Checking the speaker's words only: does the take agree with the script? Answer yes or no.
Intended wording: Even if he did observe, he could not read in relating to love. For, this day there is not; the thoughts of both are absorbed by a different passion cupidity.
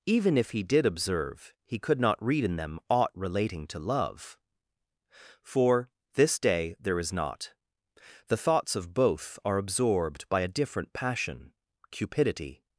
no